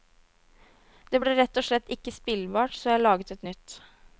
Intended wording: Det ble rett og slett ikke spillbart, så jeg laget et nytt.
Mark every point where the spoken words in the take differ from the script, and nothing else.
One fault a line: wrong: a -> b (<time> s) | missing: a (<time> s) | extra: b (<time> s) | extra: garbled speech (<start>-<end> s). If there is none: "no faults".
no faults